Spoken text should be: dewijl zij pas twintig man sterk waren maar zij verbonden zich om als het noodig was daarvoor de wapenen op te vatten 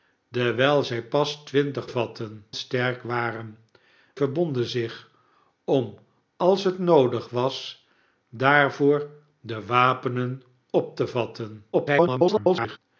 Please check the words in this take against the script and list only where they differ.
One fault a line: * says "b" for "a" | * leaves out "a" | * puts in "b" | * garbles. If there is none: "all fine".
* says "vatten" for "man"
* leaves out "maar zij"
* garbles